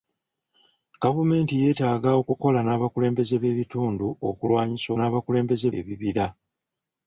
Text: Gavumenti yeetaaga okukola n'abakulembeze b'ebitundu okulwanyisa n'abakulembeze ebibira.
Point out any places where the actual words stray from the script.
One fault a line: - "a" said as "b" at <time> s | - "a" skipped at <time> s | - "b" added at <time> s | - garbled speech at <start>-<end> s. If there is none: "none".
none